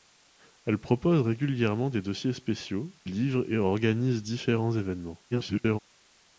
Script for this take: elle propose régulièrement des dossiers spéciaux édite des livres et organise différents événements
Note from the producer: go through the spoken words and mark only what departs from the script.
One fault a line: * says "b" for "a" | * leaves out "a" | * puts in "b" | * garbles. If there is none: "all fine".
* leaves out "édite des"
* garbles